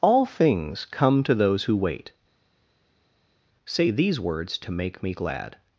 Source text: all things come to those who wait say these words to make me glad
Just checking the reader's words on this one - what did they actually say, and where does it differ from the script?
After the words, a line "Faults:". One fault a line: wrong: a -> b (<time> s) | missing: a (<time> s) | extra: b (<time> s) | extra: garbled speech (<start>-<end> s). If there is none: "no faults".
all things come to those who wait say these words to make me glad
Faults:
no faults